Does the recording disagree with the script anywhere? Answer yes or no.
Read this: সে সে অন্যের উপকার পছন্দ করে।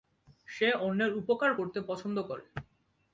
yes